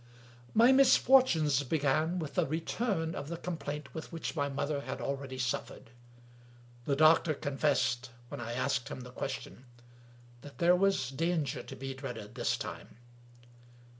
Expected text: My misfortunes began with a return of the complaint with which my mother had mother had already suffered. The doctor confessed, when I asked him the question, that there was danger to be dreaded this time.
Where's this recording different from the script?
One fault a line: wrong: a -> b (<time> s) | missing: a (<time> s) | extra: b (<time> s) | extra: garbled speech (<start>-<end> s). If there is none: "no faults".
missing: mother had (5.0 s)